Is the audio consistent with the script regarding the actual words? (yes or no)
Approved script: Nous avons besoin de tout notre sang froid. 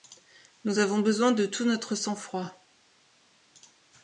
yes